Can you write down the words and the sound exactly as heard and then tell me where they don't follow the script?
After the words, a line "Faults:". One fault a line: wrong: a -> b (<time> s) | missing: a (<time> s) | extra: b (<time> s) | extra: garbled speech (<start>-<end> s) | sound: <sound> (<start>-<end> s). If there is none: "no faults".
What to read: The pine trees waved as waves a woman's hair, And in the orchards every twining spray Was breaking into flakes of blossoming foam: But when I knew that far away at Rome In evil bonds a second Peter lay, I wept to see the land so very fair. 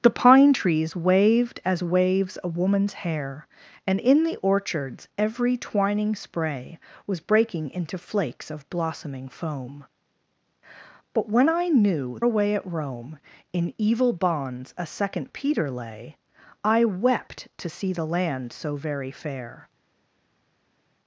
The pine trees waved as waves a woman's hair, And in the orchards every twining spray Was breaking into flakes of blossoming foam: But when I knew away at Rome In evil bonds a second Peter lay, I wept to see the land so very fair.
Faults:
missing: that far (12.2 s)